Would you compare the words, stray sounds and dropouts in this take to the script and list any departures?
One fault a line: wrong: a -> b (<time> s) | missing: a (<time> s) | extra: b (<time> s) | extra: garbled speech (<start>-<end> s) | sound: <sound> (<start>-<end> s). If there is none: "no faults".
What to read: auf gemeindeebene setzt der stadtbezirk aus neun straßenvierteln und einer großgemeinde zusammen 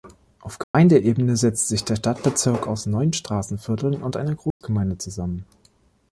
sound: dropout (0.6-0.7 s)
extra: sich (1.7 s)
sound: dropout (4.5-4.6 s)